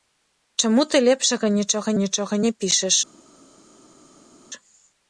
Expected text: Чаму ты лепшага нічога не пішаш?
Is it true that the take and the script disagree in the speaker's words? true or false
true